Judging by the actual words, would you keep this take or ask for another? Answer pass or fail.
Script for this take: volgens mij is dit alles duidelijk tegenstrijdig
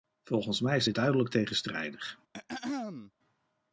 fail